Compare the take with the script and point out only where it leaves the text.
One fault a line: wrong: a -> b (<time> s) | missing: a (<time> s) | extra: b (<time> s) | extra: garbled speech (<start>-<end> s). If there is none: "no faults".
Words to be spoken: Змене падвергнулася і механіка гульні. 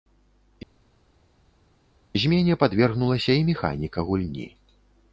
no faults